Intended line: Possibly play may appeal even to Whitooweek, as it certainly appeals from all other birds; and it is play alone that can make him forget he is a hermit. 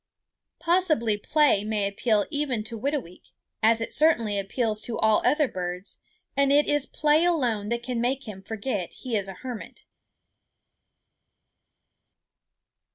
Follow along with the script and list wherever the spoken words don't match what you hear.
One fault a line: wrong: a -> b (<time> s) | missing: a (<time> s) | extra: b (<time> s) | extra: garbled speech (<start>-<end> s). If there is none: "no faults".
wrong: from -> to (4.8 s)